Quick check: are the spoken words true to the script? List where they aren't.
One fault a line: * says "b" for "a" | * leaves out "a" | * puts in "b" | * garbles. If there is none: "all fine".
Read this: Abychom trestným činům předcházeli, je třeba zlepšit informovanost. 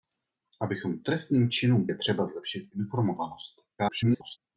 * leaves out "předcházeli"
* garbles